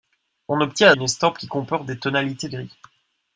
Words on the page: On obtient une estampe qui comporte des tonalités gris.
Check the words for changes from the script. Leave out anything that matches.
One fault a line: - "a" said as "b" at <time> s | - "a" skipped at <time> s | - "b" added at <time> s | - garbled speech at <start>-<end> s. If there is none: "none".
none